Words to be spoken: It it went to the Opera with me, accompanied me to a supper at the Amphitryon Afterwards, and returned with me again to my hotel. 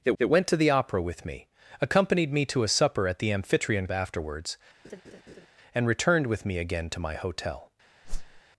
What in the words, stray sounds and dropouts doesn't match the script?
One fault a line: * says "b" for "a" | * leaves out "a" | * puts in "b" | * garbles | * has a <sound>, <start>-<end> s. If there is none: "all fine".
* has a laugh, 4.8-5.5 s
* has a whoosh, 8.0-8.4 s